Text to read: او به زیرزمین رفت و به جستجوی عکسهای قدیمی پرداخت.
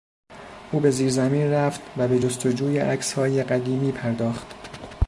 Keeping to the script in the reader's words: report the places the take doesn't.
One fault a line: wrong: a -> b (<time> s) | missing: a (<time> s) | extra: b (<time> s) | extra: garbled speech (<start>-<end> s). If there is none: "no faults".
no faults